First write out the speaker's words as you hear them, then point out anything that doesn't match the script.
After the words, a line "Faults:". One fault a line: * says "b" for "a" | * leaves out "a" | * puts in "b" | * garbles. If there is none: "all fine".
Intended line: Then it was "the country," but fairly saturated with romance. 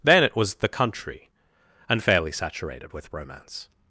Then it was "the country," and fairly saturated with romance.
Faults:
* says "and" for "but"